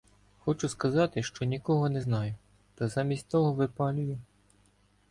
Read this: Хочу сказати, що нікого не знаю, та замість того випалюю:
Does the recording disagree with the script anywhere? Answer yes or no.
no